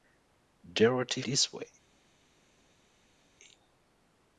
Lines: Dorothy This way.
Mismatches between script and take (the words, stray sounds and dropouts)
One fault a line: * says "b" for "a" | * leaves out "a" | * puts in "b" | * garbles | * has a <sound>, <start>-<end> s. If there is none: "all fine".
all fine